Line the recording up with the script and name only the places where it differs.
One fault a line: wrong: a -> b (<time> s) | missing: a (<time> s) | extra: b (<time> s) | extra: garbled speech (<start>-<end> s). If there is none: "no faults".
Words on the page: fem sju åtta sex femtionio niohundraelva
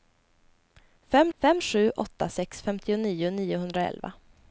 extra: fem (1.4 s)